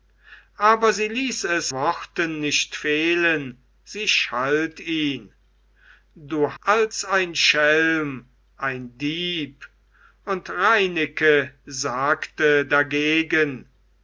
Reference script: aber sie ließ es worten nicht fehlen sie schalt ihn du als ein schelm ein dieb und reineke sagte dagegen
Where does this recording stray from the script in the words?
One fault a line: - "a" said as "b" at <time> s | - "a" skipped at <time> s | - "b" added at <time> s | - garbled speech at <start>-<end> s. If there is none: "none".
none